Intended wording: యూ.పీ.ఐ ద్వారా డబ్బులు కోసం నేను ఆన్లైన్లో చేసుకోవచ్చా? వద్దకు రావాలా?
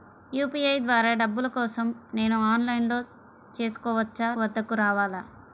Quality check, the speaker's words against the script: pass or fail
pass